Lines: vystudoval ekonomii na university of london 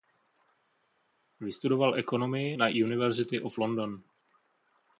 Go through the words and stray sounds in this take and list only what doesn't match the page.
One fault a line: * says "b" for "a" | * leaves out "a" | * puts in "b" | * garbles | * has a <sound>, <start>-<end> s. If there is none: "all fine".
all fine